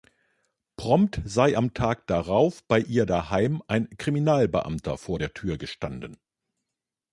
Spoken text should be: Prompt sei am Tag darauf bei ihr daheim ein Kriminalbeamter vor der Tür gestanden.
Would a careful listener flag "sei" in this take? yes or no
no